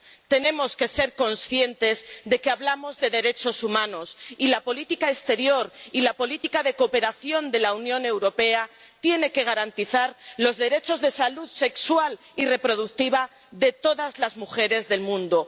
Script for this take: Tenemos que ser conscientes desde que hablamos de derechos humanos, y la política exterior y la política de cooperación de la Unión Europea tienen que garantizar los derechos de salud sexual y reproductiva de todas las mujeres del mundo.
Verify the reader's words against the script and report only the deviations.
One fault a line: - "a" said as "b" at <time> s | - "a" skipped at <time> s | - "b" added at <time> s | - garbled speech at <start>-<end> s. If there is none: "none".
- "desde" said as "de" at 2.2 s